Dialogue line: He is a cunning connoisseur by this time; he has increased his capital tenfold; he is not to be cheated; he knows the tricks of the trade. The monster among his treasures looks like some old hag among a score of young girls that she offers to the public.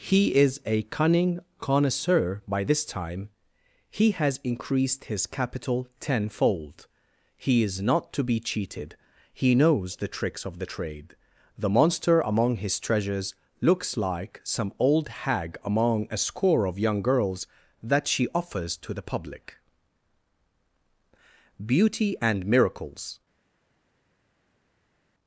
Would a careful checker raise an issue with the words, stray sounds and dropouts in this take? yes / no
yes